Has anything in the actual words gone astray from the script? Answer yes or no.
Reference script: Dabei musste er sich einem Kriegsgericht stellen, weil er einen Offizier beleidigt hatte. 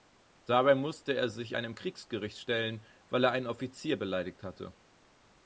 no